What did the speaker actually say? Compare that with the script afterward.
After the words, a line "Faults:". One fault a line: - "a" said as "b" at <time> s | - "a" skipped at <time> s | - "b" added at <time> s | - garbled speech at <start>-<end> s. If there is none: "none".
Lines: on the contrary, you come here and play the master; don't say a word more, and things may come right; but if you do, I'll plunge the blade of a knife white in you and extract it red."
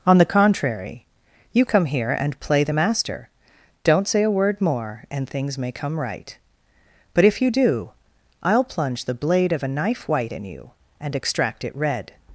on the contrary, you come here and play the master; don't say a word more, and things may come right; but if you do, I'll plunge the blade of a knife white in you and extract it red."
Faults:
none